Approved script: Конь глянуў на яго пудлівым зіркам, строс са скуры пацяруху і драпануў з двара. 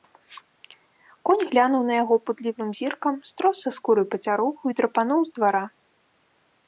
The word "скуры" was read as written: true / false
true